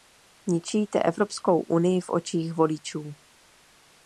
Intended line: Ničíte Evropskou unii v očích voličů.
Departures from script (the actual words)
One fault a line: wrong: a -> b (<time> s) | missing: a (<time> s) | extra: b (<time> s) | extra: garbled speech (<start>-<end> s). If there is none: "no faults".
no faults